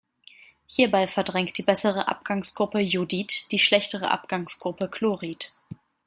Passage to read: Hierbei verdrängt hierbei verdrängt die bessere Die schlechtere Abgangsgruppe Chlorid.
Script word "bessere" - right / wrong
wrong